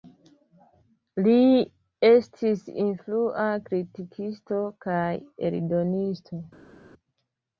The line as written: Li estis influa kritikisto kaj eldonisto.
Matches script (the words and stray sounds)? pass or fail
pass